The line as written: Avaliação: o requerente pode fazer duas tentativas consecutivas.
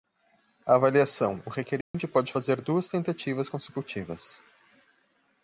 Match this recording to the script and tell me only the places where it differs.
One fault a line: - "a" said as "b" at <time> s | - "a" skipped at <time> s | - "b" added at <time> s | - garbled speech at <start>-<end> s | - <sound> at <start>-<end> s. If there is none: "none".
- dropout at 1.8-1.9 s